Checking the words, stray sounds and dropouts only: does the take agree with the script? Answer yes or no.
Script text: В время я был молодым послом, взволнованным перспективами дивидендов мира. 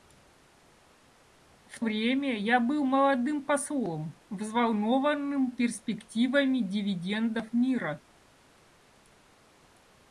yes